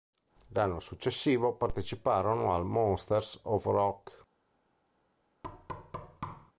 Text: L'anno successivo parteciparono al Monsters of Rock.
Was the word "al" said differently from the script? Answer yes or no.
no